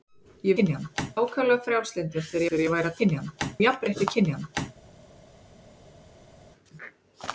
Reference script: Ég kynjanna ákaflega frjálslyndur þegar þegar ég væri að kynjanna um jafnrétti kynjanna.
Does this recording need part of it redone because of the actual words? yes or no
no